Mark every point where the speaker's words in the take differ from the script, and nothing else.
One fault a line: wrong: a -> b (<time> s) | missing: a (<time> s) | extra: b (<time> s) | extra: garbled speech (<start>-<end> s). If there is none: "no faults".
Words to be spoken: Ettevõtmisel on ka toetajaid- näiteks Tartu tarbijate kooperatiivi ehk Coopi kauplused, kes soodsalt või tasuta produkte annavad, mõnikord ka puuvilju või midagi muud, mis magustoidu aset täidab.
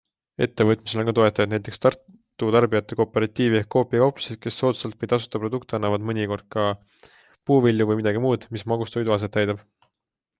no faults